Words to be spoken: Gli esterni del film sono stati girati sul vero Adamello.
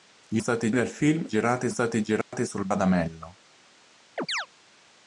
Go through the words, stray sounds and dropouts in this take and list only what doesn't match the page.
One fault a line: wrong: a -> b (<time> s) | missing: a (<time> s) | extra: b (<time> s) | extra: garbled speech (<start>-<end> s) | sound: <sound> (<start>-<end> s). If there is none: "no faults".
wrong: esterni -> stati (0.4 s)
wrong: sono -> girati (1.3 s)
sound: dropout (2.2-2.3 s)
missing: vero (2.7 s)
sound: chirp (4.2-4.5 s)